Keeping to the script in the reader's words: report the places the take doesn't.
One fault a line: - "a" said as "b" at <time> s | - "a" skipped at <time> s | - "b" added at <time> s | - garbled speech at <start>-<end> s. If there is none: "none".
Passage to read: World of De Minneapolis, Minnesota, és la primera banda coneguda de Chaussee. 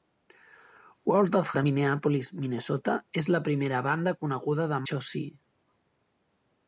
none